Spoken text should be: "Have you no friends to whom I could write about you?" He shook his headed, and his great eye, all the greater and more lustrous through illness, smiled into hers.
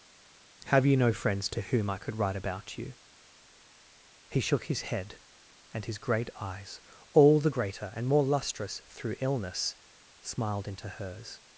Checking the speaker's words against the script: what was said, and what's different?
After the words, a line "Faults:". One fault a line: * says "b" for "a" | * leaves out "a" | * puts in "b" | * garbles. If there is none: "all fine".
"Have you no friends to whom I could write about you?" He shook his head, and his great eyes, all the greater and more lustrous through illness, smiled into hers.
Faults:
* says "head" for "headed"
* says "eyes" for "eye"